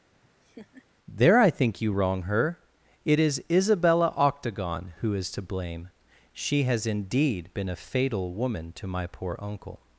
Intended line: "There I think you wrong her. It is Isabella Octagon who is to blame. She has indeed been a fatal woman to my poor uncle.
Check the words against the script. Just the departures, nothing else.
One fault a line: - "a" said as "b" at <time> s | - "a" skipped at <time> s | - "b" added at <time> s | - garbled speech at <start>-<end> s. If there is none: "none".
none